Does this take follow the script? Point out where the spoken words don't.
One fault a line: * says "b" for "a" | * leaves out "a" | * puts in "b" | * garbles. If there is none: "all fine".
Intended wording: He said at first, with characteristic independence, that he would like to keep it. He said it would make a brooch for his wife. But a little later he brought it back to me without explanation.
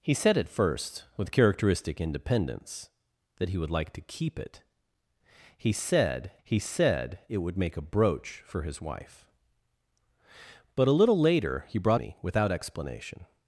* puts in "he said"
* leaves out "it back to"